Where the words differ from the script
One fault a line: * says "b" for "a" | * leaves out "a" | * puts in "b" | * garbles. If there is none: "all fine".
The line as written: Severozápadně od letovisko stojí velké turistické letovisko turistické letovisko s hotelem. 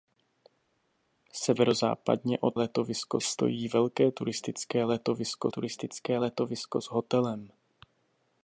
all fine